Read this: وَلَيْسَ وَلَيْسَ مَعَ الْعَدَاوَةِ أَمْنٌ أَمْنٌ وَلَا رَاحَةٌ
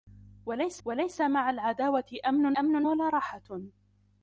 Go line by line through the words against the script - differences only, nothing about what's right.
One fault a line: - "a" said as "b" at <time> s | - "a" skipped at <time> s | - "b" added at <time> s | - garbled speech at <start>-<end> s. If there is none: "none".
none